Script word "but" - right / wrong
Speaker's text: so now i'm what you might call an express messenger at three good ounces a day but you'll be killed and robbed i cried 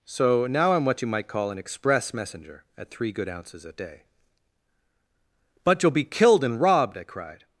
right